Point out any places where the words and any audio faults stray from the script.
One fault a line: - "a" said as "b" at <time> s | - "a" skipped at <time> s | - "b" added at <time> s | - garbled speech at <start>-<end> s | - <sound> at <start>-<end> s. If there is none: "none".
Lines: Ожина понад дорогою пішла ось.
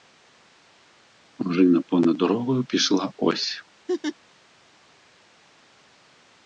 - laugh at 3.9-4.2 s